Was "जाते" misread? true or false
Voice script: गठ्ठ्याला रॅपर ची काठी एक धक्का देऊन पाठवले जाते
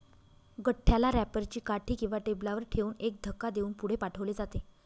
false